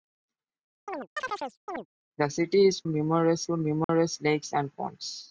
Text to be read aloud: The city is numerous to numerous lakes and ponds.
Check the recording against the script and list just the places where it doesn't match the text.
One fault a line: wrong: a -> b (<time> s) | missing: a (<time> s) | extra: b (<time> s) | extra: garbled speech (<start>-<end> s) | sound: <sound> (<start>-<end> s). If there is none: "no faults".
sound: chirp (0.9-1.9 s)
sound: dropout (3.8-3.9 s)